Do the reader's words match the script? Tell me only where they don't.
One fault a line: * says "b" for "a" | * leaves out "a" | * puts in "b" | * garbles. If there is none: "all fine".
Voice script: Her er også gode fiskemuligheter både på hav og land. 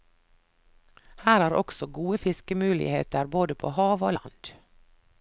all fine